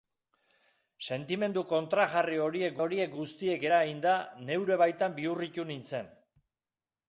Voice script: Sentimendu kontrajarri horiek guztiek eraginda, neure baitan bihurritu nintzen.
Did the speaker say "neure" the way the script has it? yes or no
yes